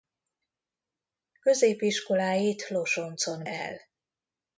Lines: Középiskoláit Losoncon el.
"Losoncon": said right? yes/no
yes